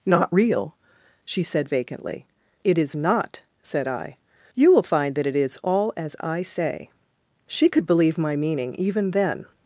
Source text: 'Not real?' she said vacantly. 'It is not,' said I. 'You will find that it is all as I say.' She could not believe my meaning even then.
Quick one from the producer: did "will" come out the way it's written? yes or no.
yes